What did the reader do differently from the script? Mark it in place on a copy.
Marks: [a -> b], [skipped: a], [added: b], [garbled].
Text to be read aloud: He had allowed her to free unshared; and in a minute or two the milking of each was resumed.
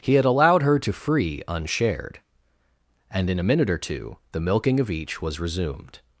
He had allowed her to free unshared; and in a minute or two the milking of each was resumed.